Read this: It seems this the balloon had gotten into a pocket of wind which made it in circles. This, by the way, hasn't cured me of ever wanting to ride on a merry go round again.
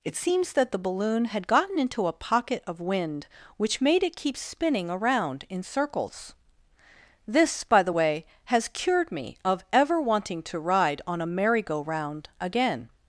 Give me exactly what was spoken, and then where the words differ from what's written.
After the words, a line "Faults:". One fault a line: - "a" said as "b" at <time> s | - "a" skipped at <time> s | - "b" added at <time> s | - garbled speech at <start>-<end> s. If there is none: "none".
It seems that the balloon had gotten into a pocket of wind which made it keep spinning around in circles. This, by the way, has cured me of ever wanting to ride on a merry go round again.
Faults:
- "this" said as "that" at 0.5 s
- "keep spinning around" added at 4.2 s
- "hasn't" said as "has" at 8.4 s